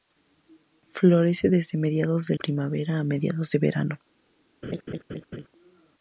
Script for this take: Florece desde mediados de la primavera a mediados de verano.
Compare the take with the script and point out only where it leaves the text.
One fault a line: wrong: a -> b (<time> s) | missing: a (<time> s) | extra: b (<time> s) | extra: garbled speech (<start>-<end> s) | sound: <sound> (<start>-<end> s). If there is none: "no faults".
missing: la (2.4 s)
sound: laugh (4.6-5.5 s)